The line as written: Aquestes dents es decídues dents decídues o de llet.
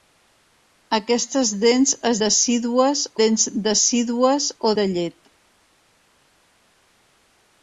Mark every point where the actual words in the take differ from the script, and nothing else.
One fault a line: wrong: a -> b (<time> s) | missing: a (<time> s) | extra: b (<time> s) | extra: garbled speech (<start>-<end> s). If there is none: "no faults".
no faults